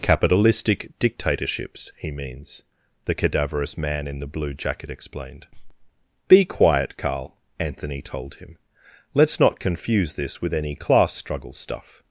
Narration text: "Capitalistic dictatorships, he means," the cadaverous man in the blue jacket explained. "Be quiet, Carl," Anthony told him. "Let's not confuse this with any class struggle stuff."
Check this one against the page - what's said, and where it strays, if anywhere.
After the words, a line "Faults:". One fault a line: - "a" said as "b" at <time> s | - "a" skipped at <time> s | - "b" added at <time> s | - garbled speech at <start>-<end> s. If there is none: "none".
"Capitalistic dictatorships, he means," the cadaverous man in the blue jacket explained. "Be quiet, Carl," Anthony told him. "Let's not confuse this with any class struggle stuff."
Faults:
none